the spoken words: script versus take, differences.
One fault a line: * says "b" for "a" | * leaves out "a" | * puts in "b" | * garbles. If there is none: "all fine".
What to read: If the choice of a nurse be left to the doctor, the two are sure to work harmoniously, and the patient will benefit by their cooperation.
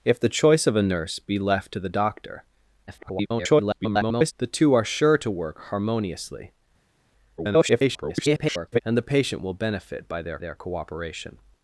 * garbles
* garbles
* puts in "their"